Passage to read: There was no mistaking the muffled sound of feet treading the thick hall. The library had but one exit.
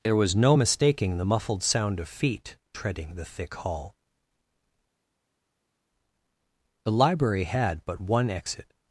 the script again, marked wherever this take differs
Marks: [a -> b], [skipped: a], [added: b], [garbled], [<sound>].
There was no mistaking the muffled sound of feet treading the thick hall. The library had but one exit.